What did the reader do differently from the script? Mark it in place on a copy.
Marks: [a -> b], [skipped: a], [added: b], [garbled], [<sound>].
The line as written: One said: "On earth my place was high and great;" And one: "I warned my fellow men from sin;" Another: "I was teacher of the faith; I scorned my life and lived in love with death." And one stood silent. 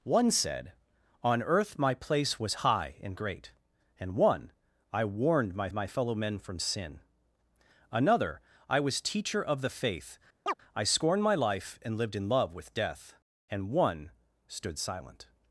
One said: "On earth my place was high and great;" And one: "I warned my [added: my] fellow men from sin;" Another: "I was teacher of the faith; [chirp] I scorned my life and lived in love with death." And one stood silent.